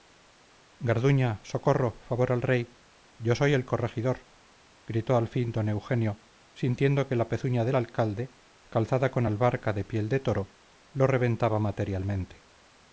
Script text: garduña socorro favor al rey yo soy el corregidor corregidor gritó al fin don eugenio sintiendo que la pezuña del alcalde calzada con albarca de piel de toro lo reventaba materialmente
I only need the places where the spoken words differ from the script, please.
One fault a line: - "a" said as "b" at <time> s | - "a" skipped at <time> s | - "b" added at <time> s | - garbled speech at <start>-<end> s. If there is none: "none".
- "corregidor" skipped at 4.3 s